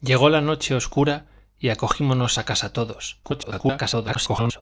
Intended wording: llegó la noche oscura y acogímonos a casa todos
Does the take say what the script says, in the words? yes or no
no